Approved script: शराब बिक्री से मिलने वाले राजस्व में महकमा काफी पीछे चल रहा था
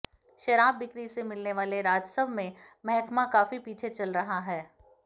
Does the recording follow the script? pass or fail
fail